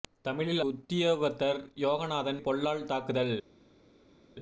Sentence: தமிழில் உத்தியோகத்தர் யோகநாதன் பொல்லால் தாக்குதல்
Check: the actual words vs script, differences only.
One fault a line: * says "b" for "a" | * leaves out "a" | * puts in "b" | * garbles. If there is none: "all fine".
all fine